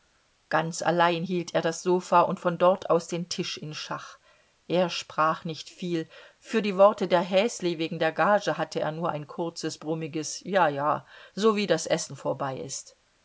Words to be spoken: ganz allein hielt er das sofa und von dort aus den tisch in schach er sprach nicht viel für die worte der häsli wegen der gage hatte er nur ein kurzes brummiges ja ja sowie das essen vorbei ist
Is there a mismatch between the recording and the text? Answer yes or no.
no